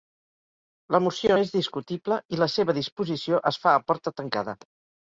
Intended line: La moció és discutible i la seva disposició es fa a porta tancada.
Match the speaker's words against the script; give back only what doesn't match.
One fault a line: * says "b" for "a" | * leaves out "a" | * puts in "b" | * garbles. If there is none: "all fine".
all fine